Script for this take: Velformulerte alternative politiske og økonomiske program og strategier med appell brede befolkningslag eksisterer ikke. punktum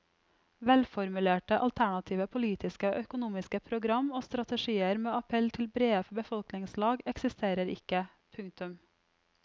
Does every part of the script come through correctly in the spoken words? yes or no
no